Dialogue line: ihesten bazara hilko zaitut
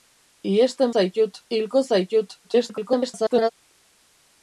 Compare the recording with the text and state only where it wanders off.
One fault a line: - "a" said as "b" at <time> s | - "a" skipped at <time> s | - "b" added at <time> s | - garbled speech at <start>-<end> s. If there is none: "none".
- "bazara" said as "zaitut" at 0.9 s
- garbled speech at 2.4-3.5 s